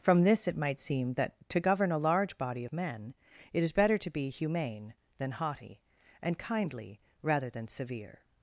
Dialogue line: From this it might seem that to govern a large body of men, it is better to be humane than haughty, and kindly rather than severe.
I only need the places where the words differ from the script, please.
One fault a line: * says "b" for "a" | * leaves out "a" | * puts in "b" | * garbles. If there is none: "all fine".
all fine